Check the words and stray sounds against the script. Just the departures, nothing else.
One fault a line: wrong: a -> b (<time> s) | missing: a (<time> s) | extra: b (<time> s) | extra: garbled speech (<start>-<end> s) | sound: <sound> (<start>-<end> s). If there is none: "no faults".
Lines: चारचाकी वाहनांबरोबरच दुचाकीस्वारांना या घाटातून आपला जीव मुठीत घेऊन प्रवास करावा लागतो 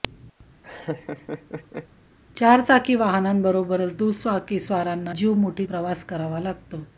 sound: laugh (0.6-1.9 s)
missing: या घाटातून आपला (5.2 s)
missing: घेऊन (5.7 s)